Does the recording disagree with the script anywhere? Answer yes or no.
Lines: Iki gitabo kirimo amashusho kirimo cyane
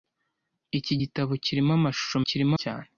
no